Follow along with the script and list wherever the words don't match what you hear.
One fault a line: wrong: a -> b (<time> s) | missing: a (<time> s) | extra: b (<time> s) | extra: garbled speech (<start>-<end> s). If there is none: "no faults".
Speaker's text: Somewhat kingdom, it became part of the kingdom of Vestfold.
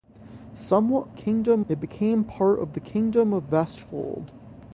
no faults